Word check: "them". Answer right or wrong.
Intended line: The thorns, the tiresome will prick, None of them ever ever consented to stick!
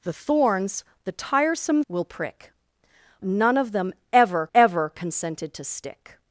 right